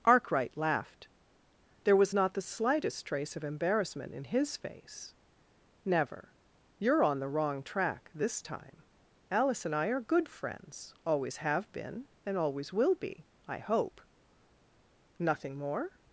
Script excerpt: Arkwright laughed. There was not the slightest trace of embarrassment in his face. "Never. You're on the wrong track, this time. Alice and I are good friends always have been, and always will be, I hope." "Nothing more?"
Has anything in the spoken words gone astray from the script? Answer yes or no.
no